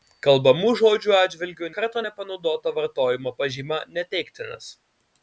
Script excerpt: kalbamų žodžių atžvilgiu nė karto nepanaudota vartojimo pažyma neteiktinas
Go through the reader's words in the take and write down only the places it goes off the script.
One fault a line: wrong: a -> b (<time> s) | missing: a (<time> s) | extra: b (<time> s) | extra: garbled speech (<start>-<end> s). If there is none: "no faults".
missing: nė (1.7 s)